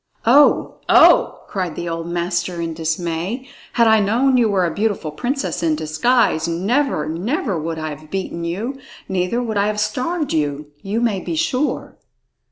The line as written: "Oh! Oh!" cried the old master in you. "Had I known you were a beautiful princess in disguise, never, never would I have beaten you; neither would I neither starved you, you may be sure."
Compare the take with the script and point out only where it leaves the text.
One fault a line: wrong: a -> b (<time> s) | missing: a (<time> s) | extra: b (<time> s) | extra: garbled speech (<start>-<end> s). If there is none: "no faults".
wrong: you -> dismay (2.7 s)
wrong: neither -> have (9.7 s)